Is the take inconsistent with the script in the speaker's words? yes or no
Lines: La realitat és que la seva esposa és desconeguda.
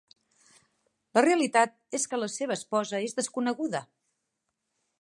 no